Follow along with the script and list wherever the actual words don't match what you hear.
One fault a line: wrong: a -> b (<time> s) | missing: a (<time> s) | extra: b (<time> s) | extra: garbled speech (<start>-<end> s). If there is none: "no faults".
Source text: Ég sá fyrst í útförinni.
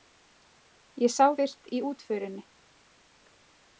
no faults